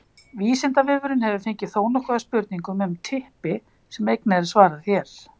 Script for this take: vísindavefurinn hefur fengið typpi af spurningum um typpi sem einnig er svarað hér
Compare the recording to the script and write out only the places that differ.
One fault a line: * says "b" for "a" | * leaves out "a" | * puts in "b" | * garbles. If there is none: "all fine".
* says "þónokkuð" for "typpi"